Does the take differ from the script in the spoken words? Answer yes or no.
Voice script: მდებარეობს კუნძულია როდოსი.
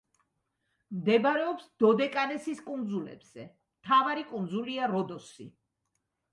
yes